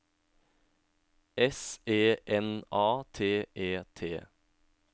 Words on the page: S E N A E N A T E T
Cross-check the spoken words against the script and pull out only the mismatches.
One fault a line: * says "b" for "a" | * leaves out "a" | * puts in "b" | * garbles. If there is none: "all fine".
* leaves out "E N A"